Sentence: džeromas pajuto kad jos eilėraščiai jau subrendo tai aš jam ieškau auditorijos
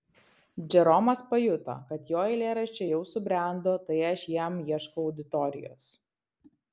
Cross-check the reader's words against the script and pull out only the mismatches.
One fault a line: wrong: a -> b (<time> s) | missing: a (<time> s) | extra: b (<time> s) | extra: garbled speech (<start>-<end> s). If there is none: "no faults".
wrong: jos -> jo (2.1 s)